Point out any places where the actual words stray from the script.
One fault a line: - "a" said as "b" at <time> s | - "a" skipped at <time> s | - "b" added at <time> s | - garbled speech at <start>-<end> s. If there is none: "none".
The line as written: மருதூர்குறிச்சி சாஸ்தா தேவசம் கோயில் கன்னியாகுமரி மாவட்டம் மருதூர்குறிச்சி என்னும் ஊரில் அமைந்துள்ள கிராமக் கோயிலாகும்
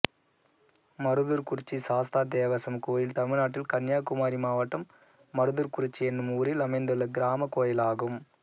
- "தமிழ்நாட்டில்" added at 3.2 s